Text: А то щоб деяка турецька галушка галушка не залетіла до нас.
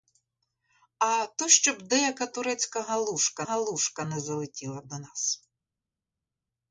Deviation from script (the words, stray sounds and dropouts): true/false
false